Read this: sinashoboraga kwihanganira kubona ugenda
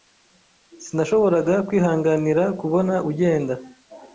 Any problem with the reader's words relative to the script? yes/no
no